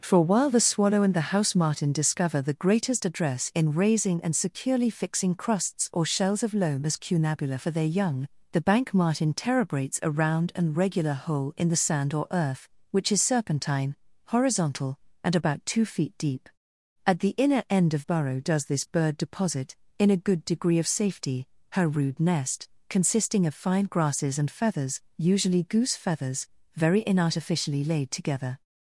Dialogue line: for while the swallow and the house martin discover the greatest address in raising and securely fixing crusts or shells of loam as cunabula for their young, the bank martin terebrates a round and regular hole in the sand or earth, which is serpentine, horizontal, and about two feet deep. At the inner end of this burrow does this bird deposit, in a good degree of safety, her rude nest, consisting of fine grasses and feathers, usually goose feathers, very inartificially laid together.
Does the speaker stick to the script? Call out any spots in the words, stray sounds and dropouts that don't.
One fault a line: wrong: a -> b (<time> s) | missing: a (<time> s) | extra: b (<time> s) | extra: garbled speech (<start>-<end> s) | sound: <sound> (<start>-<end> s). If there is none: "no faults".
missing: this (18.1 s)